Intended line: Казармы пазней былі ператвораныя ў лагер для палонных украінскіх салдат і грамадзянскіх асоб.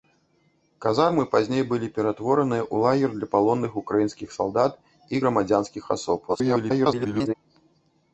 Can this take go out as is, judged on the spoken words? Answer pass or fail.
fail